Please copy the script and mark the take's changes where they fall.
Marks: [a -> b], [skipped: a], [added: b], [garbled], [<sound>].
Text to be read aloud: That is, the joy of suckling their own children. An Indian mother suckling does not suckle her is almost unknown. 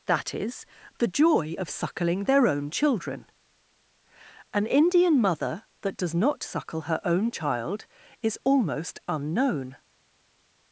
That is, the joy of suckling their own children. An Indian mother [suckling -> that] does not suckle her [added: own child] is almost unknown.